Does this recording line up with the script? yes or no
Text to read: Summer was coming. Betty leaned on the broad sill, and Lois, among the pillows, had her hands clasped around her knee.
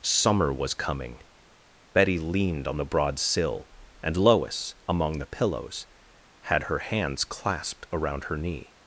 yes